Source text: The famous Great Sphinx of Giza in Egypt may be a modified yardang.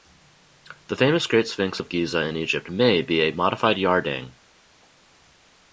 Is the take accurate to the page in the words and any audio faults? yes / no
yes